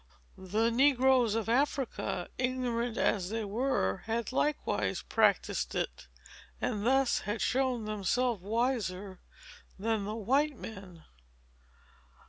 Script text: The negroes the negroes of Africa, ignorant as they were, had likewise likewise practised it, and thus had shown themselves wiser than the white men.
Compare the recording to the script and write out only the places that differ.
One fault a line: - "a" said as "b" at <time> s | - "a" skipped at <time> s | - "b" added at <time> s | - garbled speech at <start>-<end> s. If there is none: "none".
- "the negroes" skipped at 1.4 s
- "likewise" skipped at 5.0 s